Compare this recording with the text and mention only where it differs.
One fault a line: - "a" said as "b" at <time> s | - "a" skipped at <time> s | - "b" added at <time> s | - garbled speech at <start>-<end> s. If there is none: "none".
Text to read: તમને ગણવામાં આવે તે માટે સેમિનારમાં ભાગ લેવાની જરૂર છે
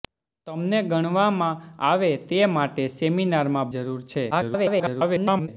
- "ભાગ લેવાની" skipped at 3.7 s
- garbled speech at 4.3-5.5 s